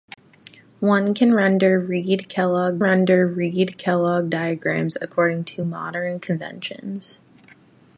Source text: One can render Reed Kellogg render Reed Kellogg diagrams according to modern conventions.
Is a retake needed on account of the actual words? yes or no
no